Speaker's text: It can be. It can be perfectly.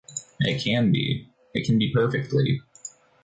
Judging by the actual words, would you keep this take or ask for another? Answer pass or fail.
pass